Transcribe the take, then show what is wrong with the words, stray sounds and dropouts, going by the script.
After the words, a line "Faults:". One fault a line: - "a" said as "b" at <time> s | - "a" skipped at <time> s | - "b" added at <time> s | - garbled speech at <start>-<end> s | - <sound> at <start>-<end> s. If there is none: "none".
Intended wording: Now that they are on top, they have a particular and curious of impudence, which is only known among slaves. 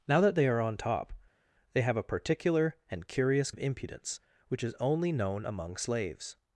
Now that they are on top, they have a particular and curious of impudence, which is only known among slaves.
Faults:
none